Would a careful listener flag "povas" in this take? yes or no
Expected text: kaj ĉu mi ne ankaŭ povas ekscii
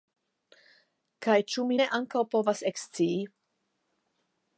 no